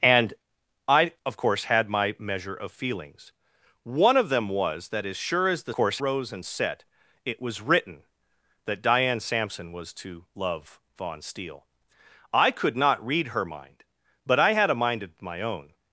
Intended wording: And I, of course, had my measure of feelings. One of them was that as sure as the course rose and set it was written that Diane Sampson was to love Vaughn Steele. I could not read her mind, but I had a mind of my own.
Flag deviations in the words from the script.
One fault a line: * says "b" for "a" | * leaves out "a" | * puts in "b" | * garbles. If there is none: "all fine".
all fine